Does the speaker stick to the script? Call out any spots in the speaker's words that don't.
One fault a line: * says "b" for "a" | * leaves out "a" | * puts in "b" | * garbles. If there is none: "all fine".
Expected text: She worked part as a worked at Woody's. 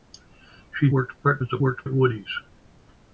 all fine